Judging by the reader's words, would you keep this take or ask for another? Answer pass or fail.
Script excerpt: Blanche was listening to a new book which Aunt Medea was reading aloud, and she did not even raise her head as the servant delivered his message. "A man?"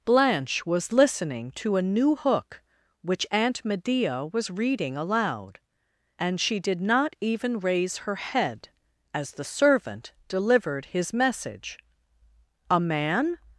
fail